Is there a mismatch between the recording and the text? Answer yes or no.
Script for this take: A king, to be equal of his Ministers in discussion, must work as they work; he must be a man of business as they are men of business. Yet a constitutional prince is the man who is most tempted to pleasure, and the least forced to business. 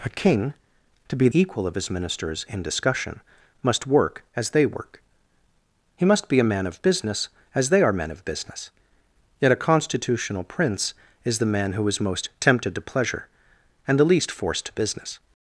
no